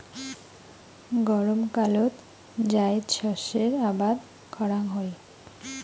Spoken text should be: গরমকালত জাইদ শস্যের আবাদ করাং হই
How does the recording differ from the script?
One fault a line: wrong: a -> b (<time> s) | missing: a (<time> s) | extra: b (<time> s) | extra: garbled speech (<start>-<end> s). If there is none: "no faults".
no faults